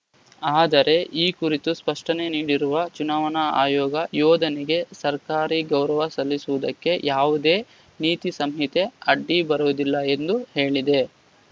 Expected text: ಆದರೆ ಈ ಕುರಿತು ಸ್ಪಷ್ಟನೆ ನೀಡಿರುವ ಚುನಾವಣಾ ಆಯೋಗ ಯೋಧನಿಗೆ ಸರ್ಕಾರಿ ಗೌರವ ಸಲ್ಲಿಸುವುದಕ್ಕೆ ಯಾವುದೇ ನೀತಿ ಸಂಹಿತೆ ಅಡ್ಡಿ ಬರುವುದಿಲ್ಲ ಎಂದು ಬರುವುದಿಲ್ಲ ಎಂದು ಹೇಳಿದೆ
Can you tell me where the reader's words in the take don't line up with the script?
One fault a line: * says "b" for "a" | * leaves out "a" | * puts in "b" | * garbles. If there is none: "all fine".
* leaves out "ಬರುವುದಿಲ್ಲ ಎಂದು"